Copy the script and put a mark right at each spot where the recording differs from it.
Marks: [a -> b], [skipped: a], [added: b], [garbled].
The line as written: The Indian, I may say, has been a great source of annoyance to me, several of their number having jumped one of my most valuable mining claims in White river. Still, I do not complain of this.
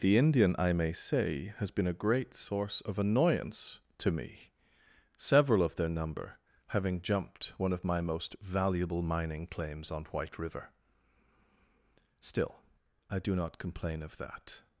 The Indian, I may say, has been a great source of annoyance to me, several of their number having jumped one of my most valuable mining claims [in -> on] White river. Still, I do not complain of [this. -> that]